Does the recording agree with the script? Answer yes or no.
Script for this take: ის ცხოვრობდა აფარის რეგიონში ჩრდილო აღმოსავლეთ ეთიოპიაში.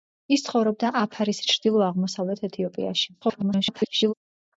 no